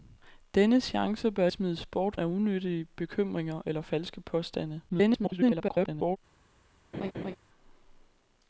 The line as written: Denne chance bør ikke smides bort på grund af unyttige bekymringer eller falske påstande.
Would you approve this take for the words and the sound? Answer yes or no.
no